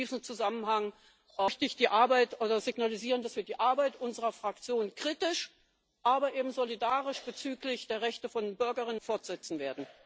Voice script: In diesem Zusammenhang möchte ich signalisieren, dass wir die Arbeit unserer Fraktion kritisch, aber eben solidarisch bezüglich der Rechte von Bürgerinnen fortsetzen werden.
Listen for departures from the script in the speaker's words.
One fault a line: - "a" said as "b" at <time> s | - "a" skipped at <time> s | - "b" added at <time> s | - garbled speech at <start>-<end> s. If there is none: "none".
none